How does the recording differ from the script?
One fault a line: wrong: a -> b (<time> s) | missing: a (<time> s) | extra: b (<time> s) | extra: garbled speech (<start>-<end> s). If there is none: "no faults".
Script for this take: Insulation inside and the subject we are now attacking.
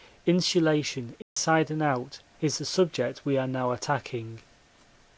extra: out is (1.8 s)